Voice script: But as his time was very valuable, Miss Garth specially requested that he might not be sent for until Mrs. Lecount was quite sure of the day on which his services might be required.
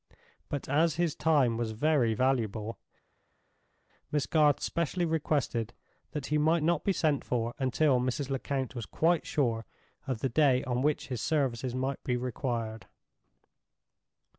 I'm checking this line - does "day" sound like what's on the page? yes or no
yes